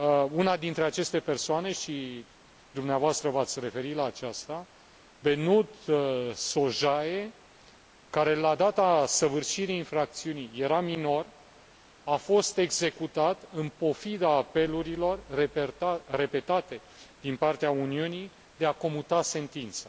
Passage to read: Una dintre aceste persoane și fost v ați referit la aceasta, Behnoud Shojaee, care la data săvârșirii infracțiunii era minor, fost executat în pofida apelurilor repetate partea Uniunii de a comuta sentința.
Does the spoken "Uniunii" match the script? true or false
true